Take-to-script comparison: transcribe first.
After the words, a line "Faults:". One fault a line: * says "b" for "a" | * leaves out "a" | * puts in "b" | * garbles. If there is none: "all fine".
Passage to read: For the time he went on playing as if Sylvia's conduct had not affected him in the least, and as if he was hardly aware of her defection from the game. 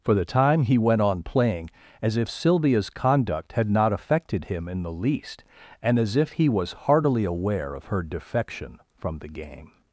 For the time he went on playing as if Sylvia's conduct had not affected him in the least, and as if he was heartily aware of her defection from the game.
Faults:
* says "heartily" for "hardly"